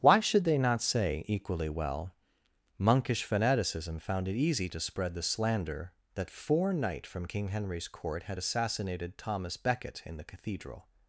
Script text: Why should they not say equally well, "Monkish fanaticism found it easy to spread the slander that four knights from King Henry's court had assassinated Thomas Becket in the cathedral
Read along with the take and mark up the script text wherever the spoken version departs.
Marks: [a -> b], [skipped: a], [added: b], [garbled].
Why should they not say equally well, "Monkish fanaticism found it easy to spread the slander that four [knights -> knight] from King Henry's court had assassinated Thomas Becket in the cathedral